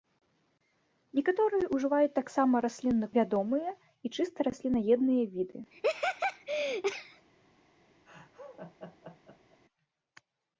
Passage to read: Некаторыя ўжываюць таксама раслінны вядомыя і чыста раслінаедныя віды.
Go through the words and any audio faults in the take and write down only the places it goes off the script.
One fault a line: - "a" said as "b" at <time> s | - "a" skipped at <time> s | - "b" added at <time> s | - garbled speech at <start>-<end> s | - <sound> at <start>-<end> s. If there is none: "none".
- laugh at 5.7-7.3 s
- laugh at 8.1-9.6 s